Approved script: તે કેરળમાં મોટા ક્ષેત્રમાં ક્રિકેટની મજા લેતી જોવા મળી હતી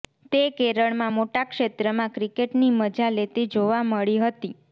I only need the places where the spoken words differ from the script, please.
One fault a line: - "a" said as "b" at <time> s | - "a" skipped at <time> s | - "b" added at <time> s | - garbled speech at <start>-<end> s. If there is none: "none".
none